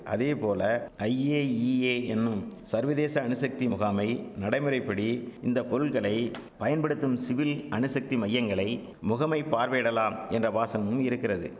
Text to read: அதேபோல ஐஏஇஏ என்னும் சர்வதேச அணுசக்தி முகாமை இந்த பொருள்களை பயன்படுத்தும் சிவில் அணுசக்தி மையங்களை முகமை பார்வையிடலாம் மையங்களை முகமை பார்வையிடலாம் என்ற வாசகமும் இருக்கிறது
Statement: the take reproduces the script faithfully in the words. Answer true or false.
false